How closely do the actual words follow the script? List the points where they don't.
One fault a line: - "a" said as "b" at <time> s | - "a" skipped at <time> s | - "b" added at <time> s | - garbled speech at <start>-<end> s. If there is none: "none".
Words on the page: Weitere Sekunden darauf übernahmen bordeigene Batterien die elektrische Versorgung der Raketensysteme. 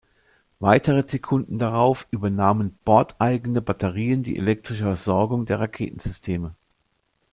none